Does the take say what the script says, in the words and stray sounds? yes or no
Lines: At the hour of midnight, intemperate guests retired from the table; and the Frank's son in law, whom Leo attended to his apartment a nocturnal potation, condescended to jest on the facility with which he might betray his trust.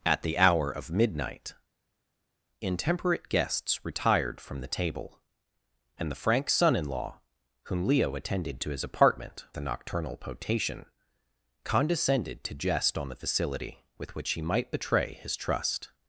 yes